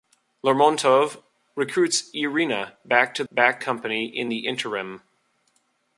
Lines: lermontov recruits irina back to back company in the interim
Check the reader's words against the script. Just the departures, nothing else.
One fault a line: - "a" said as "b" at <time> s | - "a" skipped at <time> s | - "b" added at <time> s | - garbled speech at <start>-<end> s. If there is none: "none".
none